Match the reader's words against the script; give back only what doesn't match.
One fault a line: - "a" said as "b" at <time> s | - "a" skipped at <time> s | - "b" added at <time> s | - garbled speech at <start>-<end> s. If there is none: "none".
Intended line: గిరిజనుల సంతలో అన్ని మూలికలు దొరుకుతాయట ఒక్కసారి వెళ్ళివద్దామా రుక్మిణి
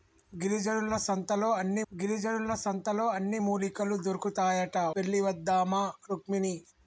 - "గిరిజనుల సంతలో అన్ని" added at 1.9 s
- "ఒక్కసారి" skipped at 4.8 s